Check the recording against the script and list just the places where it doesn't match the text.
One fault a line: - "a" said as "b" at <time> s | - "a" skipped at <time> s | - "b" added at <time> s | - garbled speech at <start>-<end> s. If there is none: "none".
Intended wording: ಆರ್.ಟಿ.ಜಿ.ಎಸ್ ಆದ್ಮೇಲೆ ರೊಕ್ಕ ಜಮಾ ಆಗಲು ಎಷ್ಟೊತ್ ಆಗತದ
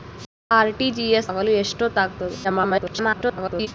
- "ಆದ್ಮೇಲೆ ರೊಕ್ಕ ಜಮಾ" skipped at 1.3 s
- garbled speech at 2.4-3.7 s